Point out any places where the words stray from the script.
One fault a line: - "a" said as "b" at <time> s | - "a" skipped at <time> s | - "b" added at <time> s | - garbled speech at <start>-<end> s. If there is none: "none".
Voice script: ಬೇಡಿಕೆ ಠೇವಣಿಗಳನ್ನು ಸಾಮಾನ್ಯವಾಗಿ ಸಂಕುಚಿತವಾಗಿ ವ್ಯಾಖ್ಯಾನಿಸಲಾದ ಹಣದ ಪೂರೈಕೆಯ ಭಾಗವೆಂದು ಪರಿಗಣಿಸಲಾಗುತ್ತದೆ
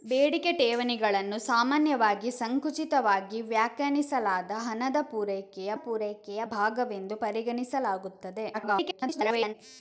- "ಪೂರೈಕೆಯ" added at 5.8 s
- garbled speech at 8.5-9.5 s